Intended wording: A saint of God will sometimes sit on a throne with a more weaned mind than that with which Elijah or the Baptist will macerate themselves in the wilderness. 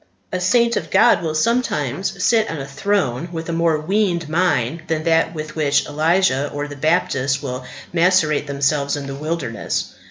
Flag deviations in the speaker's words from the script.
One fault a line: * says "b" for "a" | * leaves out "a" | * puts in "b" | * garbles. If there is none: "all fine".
all fine